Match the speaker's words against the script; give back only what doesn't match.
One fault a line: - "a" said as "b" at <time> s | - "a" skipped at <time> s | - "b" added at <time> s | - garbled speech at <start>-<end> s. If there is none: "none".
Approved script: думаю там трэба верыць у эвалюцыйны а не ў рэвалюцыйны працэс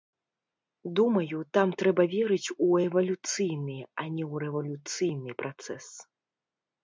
none